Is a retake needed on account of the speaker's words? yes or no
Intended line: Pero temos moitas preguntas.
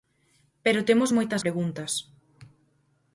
no